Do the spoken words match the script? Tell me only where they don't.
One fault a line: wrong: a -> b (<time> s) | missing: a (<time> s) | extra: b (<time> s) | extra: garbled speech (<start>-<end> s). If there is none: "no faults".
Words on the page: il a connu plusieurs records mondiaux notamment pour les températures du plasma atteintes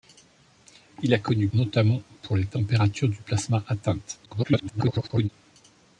missing: plusieurs records mondiaux (1.5 s)
extra: garbled speech (4.3-5.3 s)